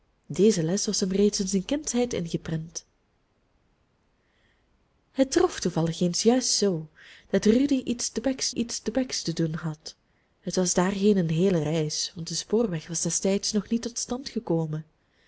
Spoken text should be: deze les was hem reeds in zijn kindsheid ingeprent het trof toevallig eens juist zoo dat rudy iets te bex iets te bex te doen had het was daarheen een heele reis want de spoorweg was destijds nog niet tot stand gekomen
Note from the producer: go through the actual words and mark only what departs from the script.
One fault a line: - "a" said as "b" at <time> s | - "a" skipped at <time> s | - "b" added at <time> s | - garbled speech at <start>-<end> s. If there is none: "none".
none